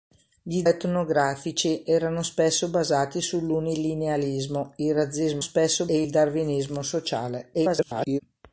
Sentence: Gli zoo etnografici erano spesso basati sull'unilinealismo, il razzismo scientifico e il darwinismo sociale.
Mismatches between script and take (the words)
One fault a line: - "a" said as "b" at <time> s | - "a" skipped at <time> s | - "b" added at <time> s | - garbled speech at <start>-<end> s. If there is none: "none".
- "zoo" skipped at 0.7 s
- "scientifico" said as "spesso" at 5.4 s
- garbled speech at 7.5-8.2 s